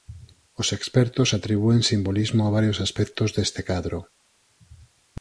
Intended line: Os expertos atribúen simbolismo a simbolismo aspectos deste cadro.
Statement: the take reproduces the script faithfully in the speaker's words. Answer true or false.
false